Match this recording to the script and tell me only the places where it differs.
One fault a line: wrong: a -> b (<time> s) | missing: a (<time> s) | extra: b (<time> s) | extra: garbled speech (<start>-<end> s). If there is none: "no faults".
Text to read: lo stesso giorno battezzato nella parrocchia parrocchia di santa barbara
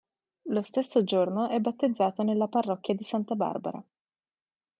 extra: è (1.5 s)
missing: parrocchia (3.0 s)